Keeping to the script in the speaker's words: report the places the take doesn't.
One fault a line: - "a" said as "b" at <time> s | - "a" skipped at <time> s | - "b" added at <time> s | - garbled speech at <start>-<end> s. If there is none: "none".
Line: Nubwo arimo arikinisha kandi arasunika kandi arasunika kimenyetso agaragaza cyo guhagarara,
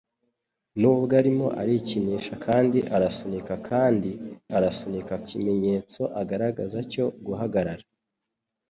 none